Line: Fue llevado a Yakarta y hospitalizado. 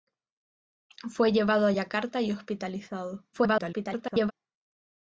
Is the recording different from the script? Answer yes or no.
yes